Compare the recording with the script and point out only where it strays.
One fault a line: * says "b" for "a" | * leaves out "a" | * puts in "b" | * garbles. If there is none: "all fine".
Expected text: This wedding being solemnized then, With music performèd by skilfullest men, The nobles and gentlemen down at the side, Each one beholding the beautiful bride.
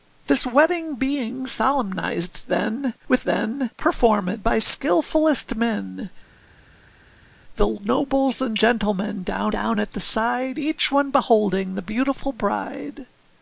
* says "then" for "music"
* puts in "down"